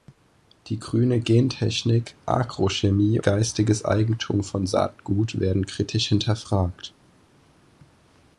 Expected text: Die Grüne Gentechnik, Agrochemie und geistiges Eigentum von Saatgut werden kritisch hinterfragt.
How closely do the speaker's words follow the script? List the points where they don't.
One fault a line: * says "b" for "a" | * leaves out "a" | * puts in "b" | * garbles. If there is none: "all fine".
* leaves out "und"